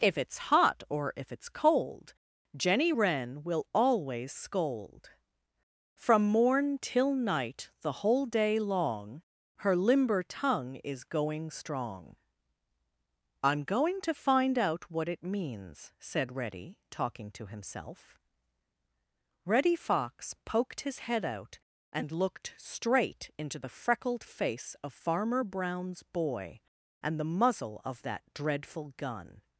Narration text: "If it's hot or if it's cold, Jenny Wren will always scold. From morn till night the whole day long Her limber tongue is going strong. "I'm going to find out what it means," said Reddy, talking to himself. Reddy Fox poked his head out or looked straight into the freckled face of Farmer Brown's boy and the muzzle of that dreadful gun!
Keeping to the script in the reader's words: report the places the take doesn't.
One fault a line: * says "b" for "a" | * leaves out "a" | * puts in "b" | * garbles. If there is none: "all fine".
* says "and" for "or"